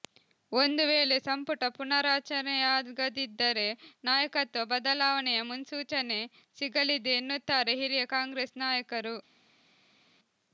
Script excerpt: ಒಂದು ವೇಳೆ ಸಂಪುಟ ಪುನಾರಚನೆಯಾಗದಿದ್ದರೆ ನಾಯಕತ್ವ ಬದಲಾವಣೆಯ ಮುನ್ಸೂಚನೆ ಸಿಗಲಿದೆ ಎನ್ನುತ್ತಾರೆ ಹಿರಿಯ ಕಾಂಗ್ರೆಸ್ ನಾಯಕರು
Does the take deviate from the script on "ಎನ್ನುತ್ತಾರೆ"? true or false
false